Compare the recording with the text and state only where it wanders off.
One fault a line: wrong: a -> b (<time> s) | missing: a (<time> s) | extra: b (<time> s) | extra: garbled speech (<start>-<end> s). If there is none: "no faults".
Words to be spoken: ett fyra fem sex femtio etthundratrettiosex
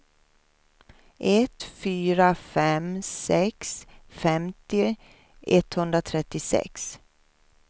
no faults